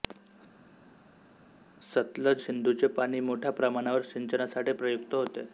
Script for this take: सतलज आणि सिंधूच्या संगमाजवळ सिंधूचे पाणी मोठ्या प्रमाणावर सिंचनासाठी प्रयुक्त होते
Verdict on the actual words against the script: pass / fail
fail